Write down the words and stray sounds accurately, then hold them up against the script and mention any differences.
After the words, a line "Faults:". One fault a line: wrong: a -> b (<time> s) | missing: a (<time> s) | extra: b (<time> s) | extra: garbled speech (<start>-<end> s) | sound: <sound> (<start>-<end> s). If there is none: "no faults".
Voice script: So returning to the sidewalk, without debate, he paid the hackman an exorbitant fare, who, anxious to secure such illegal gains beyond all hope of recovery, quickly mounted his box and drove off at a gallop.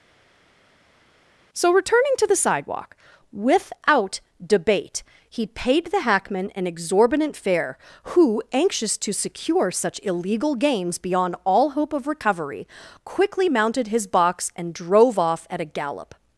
So returning to the sidewalk, without debate, he paid the hackman an exorbitant fare, who, anxious to secure such illegal gains beyond all hope of recovery, quickly mounted his box and drove off at a gallop.
Faults:
no faults